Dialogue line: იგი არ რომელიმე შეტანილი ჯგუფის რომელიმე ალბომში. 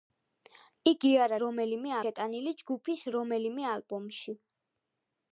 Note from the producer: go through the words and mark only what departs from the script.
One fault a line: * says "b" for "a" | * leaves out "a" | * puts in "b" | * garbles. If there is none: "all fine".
all fine